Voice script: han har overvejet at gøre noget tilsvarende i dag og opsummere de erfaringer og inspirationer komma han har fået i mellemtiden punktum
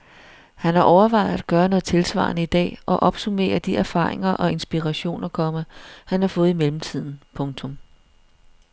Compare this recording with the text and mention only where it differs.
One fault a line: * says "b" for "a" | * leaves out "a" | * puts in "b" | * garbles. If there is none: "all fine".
all fine